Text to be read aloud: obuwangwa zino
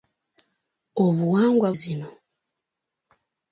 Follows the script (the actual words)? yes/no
yes